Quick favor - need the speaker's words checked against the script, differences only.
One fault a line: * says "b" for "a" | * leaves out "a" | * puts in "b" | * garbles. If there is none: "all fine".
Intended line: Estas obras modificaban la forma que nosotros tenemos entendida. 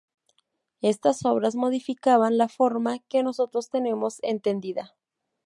all fine